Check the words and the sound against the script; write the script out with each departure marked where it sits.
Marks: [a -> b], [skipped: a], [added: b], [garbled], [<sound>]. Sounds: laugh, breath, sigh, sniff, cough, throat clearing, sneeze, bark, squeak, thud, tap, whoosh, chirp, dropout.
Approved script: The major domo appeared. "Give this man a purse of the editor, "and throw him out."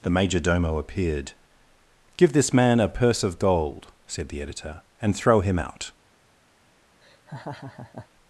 The major domo appeared. "Give this man a purse of [added: gold said] the editor, "and throw him out." [laugh]